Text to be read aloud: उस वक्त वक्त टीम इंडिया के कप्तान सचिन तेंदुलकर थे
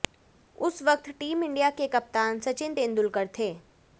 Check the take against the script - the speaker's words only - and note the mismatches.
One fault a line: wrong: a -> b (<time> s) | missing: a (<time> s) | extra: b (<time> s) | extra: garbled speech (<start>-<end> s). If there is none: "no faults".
missing: वक्त (1.1 s)